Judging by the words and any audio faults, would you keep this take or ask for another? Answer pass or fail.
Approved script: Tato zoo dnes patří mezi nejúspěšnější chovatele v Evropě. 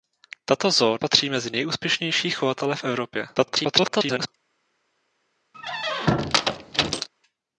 fail